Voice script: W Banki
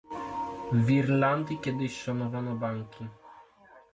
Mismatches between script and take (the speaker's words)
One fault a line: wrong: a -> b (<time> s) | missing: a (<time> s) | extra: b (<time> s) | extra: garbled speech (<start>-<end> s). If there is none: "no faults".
extra: Irlandii kiedyś szanowano (0.9 s)